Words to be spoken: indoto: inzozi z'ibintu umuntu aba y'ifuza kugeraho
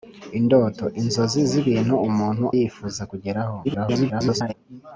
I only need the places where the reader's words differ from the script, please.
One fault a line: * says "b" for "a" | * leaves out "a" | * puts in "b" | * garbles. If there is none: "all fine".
* leaves out "aba"
* garbles